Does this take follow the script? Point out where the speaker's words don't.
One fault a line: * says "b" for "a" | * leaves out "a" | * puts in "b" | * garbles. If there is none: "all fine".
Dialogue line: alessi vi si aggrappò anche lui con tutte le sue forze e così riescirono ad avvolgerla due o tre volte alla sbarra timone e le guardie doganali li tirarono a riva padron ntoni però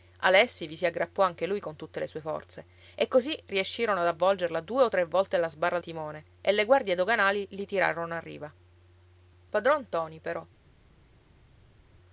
all fine